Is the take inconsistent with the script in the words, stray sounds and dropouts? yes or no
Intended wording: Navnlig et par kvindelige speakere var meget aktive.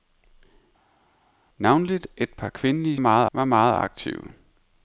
yes